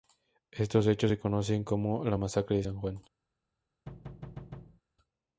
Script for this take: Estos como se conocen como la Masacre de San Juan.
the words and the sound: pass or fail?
fail